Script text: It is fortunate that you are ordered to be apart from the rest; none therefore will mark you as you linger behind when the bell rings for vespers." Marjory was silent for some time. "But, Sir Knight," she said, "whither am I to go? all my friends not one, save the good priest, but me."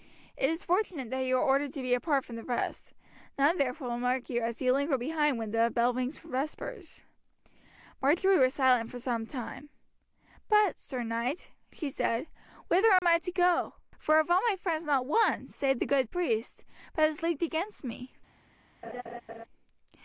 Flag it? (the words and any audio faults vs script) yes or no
yes